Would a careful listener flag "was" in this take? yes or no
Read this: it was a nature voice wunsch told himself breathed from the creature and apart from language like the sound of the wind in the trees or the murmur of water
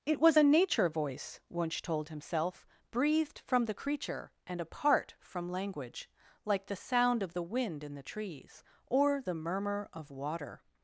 no